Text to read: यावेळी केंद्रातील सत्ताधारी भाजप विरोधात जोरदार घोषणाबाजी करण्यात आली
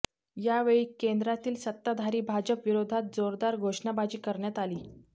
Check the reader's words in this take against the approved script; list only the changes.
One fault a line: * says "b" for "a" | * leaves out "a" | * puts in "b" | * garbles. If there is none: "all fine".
all fine